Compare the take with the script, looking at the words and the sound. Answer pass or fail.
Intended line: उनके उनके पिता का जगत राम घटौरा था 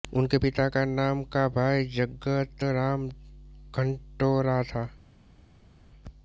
fail